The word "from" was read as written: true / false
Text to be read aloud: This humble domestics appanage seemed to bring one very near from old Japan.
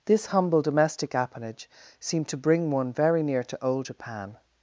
false